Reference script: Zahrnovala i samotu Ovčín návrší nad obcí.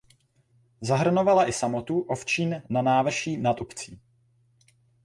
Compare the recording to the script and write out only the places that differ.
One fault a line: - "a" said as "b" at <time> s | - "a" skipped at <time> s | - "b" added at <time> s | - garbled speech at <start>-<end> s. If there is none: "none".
- "na" added at 2.7 s